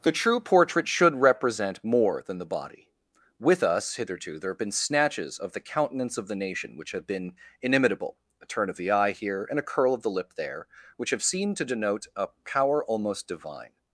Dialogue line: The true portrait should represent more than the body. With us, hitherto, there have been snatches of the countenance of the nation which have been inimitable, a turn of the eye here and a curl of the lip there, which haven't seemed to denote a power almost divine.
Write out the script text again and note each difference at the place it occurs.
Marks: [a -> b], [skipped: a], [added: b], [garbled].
The true portrait should represent more than the body. With us, hitherto, there have been snatches of the countenance of the nation which have been inimitable, a turn of the eye here and a curl of the lip there, which [haven't -> have] seemed to denote a power almost divine.